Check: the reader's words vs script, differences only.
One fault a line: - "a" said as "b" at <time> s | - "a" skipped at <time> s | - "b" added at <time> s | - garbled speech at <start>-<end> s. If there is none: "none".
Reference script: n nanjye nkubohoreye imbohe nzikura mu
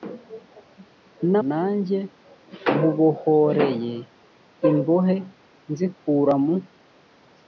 none